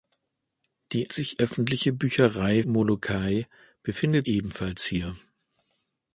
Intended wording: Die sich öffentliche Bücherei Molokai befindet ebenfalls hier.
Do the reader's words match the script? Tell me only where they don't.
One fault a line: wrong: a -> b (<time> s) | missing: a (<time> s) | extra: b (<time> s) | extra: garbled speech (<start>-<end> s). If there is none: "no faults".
no faults